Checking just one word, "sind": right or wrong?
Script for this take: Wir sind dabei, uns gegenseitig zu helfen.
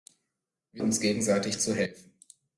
wrong